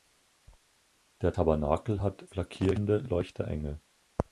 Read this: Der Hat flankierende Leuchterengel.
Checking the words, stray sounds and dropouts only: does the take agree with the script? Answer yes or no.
no